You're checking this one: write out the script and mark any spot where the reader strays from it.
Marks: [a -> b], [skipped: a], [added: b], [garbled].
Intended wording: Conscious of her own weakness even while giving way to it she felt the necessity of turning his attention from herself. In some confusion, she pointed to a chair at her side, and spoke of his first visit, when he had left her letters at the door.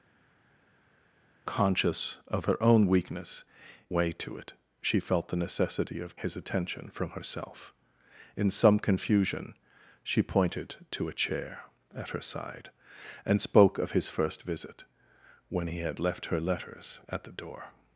Conscious of her own weakness [skipped: even while giving] way to it she felt the necessity of [skipped: turning] his attention from herself. In some confusion, she pointed to a chair at her side, and spoke of his first visit, when he had left her letters at the door.